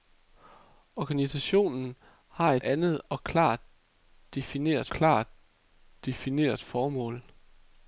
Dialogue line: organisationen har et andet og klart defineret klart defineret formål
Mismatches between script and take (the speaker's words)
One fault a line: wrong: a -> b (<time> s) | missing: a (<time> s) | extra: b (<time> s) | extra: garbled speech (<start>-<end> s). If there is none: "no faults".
no faults